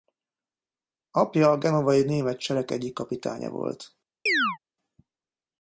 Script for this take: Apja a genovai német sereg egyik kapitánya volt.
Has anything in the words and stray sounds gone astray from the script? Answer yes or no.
yes